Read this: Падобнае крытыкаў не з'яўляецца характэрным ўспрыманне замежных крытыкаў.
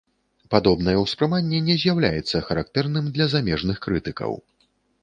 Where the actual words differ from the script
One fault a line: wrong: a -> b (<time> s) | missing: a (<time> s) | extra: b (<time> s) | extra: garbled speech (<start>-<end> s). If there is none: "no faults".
wrong: крытыкаў -> ўспрыманне (1.0 s)
wrong: ўспрыманне -> для (3.2 s)